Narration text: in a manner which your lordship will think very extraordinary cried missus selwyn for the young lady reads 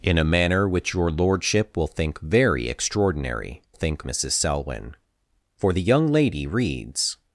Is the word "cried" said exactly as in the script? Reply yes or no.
no